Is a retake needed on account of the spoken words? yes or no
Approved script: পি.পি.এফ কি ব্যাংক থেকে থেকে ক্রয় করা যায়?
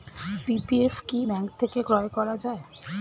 yes